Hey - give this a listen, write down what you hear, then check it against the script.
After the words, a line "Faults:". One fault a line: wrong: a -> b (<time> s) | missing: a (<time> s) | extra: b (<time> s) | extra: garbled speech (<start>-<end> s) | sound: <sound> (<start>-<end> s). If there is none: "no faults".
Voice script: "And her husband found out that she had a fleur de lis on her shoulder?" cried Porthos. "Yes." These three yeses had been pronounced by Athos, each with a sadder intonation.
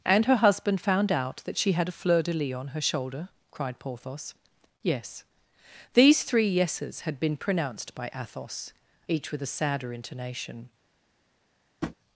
"And her husband found out that she had a fleur de lis on her shoulder?" cried Porthos. "Yes." These three yeses had been pronounced by Athos, each with a sadder intonation.
Faults:
sound: tap (11.8-12.0 s)